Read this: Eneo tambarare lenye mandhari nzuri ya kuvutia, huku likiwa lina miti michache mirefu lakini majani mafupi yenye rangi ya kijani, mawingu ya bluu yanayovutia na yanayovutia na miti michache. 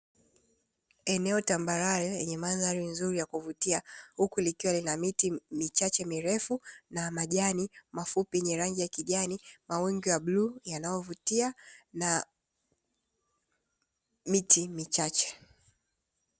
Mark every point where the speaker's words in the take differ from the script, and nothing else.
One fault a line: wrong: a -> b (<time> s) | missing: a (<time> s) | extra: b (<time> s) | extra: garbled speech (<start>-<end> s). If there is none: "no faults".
wrong: lakini -> na (6.9 s)
missing: yanayovutia na (12.3 s)